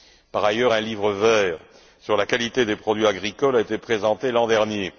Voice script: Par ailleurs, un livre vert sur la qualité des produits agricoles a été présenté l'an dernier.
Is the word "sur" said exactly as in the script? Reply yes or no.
yes